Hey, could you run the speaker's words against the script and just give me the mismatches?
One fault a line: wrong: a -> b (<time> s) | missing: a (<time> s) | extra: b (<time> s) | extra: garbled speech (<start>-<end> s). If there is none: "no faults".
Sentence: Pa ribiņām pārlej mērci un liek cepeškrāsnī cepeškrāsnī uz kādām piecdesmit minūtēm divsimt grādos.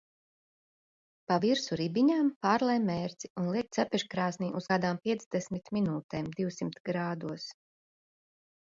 extra: virsu (1.4 s)
missing: cepeškrāsnī (4.5 s)